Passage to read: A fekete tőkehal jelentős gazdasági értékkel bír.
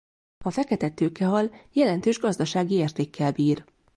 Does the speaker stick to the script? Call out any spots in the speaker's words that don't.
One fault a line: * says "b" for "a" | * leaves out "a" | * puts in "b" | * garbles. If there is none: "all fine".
all fine